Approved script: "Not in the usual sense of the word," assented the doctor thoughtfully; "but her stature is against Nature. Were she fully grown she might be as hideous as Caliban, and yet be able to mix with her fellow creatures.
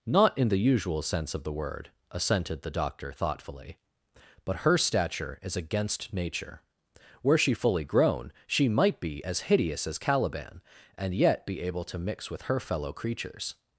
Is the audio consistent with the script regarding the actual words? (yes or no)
yes